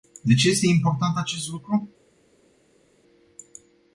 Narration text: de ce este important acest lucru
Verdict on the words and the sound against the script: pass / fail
pass